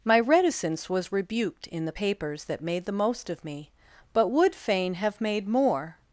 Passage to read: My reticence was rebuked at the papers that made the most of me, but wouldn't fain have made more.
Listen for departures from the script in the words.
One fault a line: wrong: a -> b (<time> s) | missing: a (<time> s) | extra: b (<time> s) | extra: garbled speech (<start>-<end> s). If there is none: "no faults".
wrong: at -> in (1.7 s)
wrong: wouldn't -> would (4.3 s)